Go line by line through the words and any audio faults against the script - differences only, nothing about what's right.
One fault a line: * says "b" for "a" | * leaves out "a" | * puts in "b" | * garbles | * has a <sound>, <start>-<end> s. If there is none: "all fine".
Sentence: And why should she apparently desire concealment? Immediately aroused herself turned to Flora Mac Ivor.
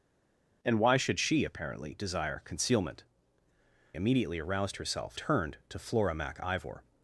all fine